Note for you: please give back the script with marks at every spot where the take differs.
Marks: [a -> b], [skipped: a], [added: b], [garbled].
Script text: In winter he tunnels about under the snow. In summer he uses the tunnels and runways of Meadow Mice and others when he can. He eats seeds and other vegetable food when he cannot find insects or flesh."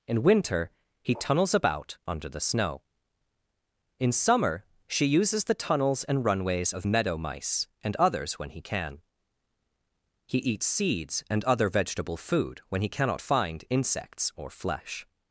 In winter he tunnels about under the snow. In summer [he -> she] uses the tunnels and runways of Meadow Mice and others when he can. He eats seeds and other vegetable food when he cannot find insects or flesh."